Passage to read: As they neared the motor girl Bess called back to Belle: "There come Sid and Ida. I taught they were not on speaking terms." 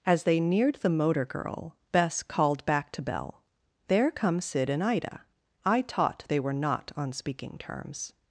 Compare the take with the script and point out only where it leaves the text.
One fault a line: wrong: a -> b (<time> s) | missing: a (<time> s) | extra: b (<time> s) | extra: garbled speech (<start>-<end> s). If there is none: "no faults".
no faults